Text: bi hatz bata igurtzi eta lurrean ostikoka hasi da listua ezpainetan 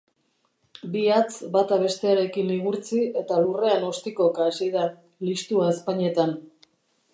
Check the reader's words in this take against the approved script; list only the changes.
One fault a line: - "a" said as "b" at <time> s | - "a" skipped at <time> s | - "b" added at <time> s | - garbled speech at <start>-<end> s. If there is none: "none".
- "bestearekin" added at 1.8 s